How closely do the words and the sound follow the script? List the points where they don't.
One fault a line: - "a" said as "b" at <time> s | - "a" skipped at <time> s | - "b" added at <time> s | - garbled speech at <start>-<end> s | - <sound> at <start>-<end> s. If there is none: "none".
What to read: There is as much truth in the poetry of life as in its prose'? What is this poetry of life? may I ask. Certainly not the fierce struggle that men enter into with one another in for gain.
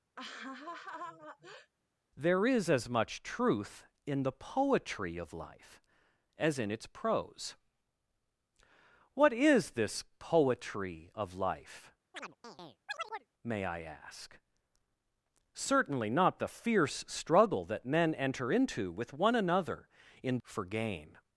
- laugh at 0.2-1.7 s
- chirp at 12.1-13.3 s